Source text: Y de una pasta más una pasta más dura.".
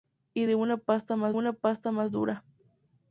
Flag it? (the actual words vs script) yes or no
no